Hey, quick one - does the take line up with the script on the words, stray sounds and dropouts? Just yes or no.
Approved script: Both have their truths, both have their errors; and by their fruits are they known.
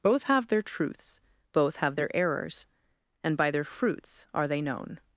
yes